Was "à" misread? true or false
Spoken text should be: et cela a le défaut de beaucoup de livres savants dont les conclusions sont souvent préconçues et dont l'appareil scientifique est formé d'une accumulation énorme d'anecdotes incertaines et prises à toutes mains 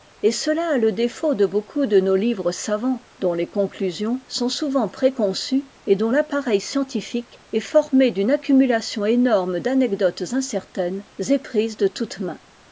true